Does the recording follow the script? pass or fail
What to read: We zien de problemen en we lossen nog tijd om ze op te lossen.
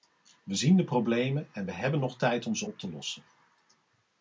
fail